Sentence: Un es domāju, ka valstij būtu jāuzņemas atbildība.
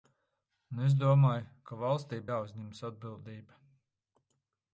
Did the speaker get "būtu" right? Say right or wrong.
wrong